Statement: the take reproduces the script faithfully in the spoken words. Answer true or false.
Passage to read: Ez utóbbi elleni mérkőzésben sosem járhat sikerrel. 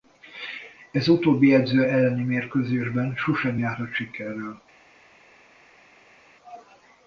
false